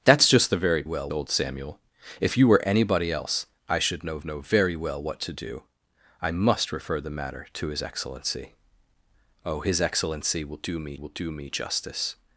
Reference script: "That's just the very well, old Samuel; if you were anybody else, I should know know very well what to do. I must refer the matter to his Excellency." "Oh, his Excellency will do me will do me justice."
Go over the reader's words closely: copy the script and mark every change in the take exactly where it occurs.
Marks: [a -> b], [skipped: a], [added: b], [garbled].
"That's just the very well, old Samuel; if you were anybody else, I should know know very well what to do. I must refer the matter to his Excellency." "Oh, his Excellency will do me will do me justice."